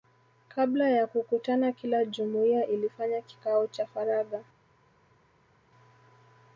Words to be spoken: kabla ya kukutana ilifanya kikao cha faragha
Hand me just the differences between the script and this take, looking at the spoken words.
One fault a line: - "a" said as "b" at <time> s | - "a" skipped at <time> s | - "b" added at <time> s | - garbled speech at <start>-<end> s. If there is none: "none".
- "kila jumuiya" added at 1.7 s